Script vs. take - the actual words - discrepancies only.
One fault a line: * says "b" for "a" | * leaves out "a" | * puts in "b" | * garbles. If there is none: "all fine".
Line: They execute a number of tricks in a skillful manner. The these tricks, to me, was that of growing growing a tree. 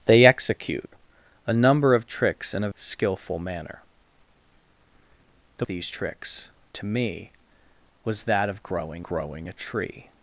all fine